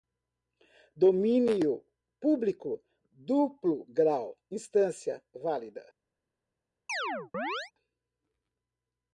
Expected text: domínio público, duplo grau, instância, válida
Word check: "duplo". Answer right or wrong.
right